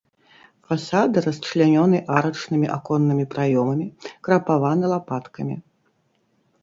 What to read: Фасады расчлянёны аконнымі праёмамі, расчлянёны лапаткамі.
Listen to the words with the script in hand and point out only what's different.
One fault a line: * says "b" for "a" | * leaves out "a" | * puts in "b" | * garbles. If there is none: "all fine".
* puts in "арачнымі"
* says "крапаваны" for "расчлянёны"